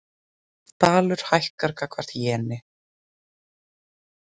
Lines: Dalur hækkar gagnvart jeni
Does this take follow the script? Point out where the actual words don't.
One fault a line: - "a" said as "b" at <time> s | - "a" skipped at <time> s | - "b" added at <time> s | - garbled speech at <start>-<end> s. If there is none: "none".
none